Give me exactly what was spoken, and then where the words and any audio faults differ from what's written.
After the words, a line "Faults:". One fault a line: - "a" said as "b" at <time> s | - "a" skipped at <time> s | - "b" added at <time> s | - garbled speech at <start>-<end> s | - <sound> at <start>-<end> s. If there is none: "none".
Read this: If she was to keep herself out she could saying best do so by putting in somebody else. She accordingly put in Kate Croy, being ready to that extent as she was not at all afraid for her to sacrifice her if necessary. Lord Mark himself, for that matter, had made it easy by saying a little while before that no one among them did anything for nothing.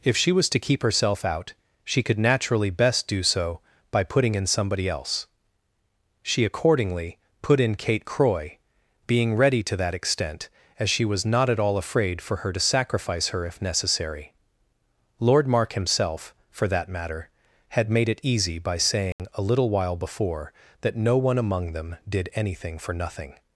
If she was to keep herself out she could naturally best do so by putting in somebody else. She accordingly put in Kate Croy, being ready to that extent as she was not at all afraid for her to sacrifice her if necessary. Lord Mark himself, for that matter, had made it easy by saying a little while before that no one among them did anything for nothing.
Faults:
- "saying" said as "naturally" at 2.2 s
- dropout at 19.1-19.2 s